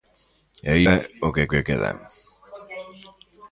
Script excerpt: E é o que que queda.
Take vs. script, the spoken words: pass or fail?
pass